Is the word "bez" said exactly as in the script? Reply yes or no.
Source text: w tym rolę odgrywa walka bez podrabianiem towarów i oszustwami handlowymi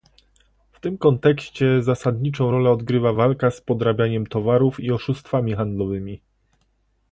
no